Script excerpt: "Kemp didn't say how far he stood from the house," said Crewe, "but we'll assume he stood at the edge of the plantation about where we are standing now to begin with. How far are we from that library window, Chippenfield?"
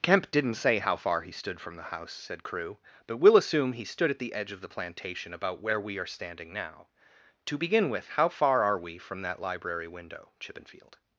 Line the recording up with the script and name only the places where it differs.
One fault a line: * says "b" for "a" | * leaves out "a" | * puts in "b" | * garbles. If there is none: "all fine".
all fine